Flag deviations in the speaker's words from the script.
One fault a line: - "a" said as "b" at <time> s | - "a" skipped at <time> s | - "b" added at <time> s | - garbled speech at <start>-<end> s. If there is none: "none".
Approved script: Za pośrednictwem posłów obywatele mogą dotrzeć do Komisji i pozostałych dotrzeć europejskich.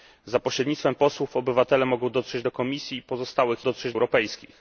none